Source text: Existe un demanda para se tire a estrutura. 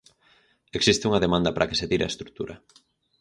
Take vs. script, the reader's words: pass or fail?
fail